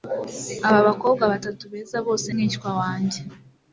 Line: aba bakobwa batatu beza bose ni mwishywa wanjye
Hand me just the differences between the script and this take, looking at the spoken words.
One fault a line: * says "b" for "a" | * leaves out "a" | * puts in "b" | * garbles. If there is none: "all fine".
* leaves out "ni"